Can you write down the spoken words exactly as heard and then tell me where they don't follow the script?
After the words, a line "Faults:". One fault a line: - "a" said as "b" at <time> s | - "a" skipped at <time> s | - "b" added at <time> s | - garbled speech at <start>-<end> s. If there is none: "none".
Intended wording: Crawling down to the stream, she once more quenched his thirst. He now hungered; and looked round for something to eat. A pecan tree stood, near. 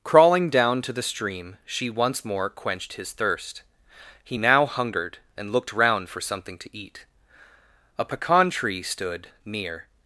Crawling down to the stream, she once more quenched his thirst. He now hungered; and looked round for something to eat. A pecan tree stood, near.
Faults:
none